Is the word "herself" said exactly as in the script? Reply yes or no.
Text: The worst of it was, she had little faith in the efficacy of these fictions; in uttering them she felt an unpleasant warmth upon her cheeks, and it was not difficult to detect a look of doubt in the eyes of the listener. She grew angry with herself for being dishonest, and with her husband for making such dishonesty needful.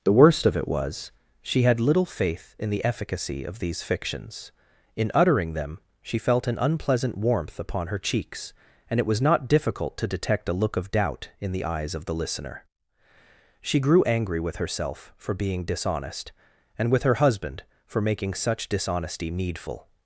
yes